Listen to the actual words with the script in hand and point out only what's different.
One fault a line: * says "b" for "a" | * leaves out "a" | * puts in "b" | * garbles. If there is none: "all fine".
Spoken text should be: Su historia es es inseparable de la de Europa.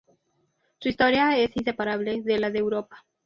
* leaves out "es"